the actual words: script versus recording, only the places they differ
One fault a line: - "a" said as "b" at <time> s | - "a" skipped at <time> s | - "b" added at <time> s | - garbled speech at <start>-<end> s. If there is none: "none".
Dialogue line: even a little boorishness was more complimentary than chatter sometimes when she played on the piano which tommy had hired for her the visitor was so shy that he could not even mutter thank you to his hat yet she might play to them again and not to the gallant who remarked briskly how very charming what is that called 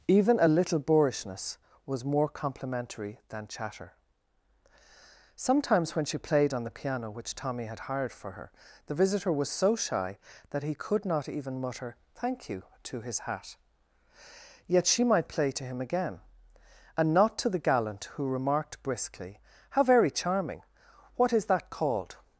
- "them" said as "him" at 15.6 s